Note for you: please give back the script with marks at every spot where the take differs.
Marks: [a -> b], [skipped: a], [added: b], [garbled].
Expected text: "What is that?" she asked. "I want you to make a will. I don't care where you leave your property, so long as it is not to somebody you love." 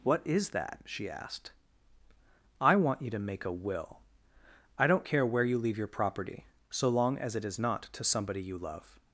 "What is that?" she asked. "I want you to make a will. I don't care where you leave your property, so long as it is not to somebody you love."